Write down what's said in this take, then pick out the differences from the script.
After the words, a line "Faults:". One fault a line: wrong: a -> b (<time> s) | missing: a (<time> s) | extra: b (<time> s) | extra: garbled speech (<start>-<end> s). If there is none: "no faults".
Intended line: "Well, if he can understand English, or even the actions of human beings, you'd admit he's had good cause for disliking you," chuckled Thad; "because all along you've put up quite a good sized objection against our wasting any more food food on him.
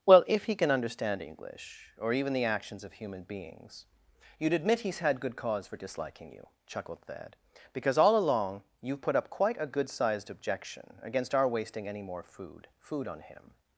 "Well, if he can understand English, or even the actions of human beings, you'd admit he's had good cause for disliking you," chuckled Thad; "because all along you've put up quite a good sized objection against our wasting any more food food on him.
Faults:
no faults